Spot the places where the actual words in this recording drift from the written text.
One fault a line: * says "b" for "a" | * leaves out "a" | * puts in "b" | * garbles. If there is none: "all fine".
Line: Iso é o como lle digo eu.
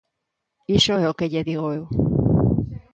* says "que" for "como"